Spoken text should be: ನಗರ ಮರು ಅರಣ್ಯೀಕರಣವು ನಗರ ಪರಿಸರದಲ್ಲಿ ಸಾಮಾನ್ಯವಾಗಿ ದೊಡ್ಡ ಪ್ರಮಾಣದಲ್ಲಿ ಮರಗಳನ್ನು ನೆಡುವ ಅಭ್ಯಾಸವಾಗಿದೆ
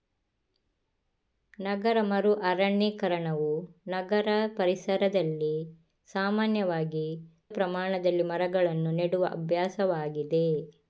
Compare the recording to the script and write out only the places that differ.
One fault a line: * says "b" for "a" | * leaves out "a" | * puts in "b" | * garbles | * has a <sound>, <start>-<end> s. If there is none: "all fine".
* leaves out "ದೊಡ್ಡ"